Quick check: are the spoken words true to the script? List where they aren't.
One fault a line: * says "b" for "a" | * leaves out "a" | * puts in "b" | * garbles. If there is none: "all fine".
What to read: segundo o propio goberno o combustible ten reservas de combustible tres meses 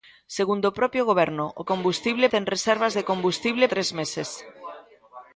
all fine